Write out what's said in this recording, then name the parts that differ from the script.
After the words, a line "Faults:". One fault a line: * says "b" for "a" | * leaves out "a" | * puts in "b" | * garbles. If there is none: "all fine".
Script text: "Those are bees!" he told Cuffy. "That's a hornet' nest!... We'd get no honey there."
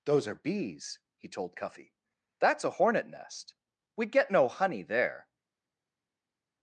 "Those are bees!" he told Cuffy. "That's a hornet' nest!... We'd get no honey there."
Faults:
all fine